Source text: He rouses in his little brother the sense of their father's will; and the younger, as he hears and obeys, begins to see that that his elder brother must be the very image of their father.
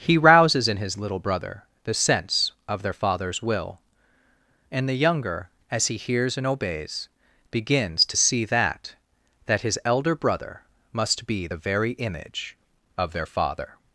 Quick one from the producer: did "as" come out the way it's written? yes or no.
yes